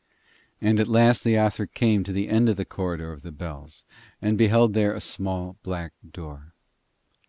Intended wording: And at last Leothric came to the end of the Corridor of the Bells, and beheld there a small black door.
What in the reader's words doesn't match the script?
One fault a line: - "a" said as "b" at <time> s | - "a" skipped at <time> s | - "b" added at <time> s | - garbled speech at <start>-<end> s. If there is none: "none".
none